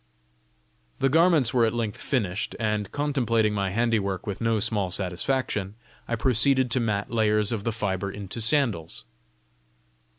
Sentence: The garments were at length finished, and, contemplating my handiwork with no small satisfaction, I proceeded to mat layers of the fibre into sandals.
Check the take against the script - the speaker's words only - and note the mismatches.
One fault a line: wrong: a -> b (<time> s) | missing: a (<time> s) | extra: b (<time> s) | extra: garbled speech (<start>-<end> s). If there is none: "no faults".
no faults